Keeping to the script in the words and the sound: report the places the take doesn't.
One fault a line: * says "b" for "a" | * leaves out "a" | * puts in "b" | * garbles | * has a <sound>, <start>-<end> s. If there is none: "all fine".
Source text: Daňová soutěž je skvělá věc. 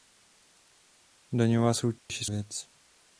* has a dropout, 2.0-2.1 s
* leaves out "skvělá"